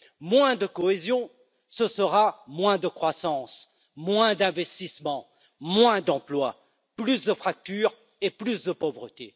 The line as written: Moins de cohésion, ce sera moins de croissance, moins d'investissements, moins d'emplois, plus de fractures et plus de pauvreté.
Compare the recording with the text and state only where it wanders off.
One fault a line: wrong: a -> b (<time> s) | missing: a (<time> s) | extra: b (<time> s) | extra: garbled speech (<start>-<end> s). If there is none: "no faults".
no faults